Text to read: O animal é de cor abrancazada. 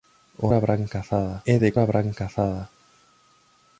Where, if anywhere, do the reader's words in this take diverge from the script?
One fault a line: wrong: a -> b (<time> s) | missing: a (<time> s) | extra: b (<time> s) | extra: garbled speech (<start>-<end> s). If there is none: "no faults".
wrong: animal -> abrancazada (0.5 s)
missing: cor (1.7 s)